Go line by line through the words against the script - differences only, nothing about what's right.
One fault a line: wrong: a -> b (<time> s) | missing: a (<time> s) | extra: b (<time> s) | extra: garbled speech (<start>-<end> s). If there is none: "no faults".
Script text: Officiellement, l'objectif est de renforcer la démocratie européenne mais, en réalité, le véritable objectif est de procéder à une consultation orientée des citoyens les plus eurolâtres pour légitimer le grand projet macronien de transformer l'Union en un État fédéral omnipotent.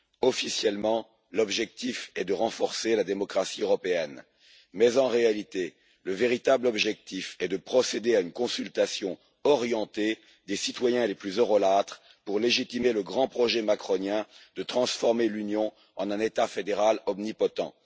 no faults